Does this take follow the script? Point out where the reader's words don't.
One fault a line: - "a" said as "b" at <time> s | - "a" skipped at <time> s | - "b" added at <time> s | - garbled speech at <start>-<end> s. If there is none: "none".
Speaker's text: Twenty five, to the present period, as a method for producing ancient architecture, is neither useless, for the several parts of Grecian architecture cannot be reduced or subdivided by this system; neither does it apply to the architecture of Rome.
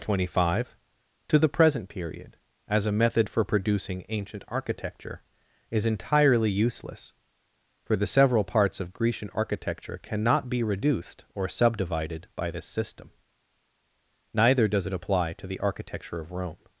- "neither" said as "entirely" at 5.8 s